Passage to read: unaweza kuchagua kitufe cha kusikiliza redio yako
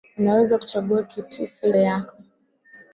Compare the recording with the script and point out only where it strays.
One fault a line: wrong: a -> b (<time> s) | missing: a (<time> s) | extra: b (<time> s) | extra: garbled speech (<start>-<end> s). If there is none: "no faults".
missing: cha kusikiliza redio (1.7 s)